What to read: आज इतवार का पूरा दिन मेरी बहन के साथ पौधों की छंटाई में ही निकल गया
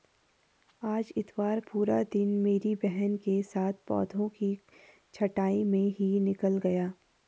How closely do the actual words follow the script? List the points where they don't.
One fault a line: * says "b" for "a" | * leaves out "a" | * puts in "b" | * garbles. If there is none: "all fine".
* leaves out "का"